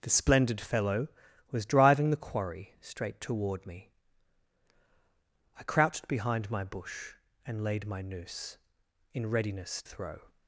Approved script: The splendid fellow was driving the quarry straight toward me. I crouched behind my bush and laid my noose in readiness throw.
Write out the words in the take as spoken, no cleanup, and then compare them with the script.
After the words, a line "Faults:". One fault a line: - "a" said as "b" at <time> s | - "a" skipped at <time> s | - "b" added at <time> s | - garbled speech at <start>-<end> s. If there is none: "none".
The splendid fellow was driving the quarry straight toward me. I crouched behind my bush and laid my noose in readiness throw.
Faults:
none